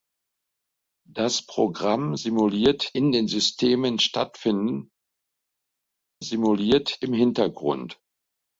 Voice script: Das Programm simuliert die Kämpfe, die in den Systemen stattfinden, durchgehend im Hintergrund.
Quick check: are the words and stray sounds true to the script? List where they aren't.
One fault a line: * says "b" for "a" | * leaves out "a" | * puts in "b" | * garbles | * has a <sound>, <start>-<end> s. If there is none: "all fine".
* leaves out "die Kämpfe die"
* says "simuliert" for "durchgehend"